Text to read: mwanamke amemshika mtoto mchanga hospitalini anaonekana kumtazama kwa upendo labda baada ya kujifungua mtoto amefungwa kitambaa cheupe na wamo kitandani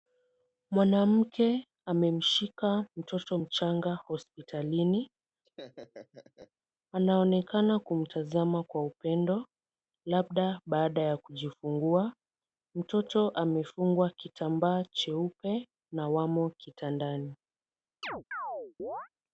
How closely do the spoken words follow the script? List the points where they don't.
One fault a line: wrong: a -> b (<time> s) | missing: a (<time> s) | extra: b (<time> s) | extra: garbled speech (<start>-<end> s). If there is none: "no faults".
no faults